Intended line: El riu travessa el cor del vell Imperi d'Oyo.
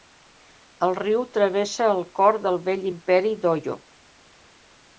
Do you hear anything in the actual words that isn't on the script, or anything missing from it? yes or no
no